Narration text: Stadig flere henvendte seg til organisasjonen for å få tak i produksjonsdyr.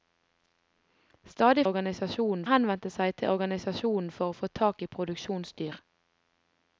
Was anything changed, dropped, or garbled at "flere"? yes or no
yes